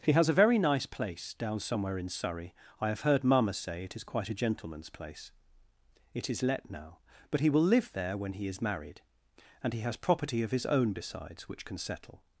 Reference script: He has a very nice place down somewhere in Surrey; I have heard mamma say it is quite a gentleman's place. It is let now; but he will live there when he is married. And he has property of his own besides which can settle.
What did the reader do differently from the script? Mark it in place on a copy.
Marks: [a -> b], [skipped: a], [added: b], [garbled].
He has a very nice place down somewhere in Surrey; I have heard mamma say it is quite a gentleman's place. It is let now; but he will live there when he is married. And he has property of his own besides which can settle.